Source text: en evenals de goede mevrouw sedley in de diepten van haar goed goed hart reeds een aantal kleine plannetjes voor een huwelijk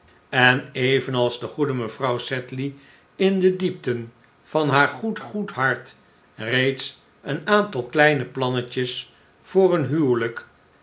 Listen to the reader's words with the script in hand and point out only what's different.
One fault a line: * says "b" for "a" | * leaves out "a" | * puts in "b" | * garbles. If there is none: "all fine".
all fine